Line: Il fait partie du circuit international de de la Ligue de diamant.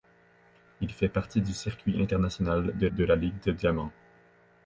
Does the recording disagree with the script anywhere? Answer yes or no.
no